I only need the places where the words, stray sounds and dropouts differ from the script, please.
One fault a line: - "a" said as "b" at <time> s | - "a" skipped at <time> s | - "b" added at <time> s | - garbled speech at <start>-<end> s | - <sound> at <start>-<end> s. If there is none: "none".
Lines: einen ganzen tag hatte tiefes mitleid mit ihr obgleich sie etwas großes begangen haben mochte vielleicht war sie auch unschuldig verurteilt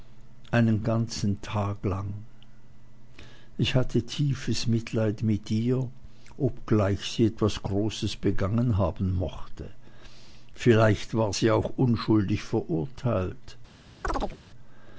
- "lang ich" added at 1.9 s
- chirp at 14.0-14.4 s